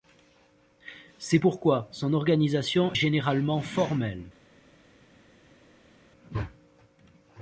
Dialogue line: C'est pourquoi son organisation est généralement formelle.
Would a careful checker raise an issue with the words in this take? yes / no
yes